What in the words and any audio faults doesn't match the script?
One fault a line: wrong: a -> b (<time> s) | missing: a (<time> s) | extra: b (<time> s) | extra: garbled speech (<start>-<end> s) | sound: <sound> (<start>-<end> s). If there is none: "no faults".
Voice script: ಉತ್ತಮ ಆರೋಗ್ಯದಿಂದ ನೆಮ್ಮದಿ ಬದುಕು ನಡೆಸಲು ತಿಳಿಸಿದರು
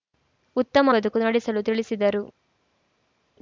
missing: ಆರೋಗ್ಯದಿಂದ ನೆಮ್ಮದಿ (0.9 s)